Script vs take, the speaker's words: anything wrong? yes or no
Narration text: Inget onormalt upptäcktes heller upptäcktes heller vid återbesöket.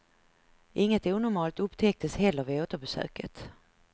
yes